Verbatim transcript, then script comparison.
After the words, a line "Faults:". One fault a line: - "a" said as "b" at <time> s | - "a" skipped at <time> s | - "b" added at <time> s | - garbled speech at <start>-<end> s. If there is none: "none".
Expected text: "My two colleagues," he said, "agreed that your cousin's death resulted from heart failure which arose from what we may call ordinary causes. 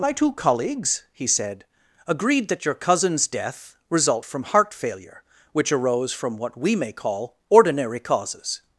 "My two colleagues," he said, "agreed that your cousin's death result from heart failure which arose from what we may call ordinary causes.
Faults:
- "resulted" said as "result" at 3.9 s